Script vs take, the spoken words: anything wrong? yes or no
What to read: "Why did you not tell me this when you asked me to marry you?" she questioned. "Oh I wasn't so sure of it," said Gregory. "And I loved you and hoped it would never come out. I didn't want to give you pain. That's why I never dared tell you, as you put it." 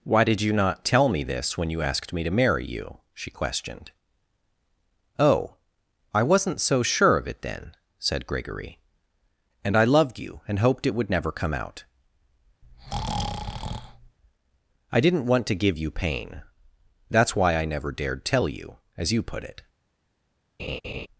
yes